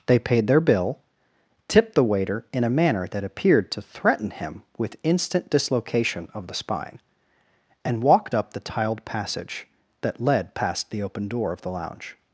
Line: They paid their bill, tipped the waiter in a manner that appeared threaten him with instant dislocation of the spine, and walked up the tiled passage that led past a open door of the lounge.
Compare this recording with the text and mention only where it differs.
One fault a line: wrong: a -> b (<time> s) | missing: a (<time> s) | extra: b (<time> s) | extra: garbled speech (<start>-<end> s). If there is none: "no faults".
extra: to (3.7 s)
wrong: a -> the (10.9 s)